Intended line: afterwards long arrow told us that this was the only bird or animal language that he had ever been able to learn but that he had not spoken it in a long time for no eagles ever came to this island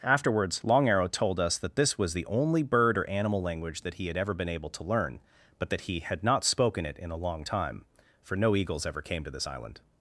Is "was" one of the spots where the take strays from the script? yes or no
no